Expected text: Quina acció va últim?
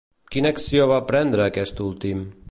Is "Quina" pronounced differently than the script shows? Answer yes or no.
no